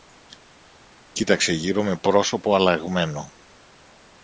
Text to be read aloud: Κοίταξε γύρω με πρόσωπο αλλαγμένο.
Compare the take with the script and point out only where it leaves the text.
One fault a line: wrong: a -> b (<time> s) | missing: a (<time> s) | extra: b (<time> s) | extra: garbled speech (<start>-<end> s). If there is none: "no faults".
no faults